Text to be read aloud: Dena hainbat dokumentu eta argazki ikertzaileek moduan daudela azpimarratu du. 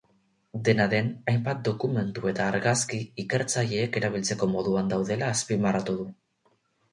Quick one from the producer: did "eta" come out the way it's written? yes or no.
yes